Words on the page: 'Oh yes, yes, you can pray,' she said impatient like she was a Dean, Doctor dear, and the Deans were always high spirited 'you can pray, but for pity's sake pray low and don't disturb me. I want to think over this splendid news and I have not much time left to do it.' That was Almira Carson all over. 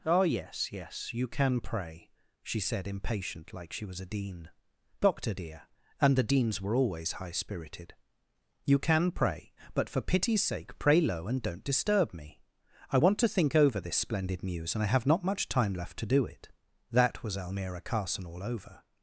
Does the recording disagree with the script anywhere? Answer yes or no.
no